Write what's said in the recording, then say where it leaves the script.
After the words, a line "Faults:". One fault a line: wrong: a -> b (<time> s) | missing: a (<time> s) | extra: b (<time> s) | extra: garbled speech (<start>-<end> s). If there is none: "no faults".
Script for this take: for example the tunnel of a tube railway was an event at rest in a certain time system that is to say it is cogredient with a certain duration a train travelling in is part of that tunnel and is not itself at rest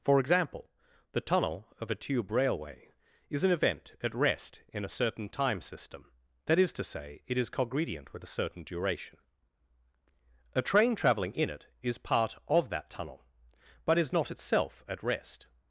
for example the tunnel of a tube railway is an event at rest in a certain time system that is to say it is cogredient with a certain duration a train travelling in it is part of that tunnel but is not itself at rest
Faults:
wrong: was -> is (3.3 s)
extra: it (11.5 s)
wrong: and -> but (13.8 s)